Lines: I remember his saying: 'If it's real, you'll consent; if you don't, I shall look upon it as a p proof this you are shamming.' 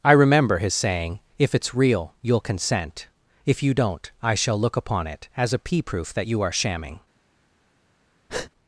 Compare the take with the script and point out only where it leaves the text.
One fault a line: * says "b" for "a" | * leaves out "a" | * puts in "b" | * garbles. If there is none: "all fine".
* says "that" for "this"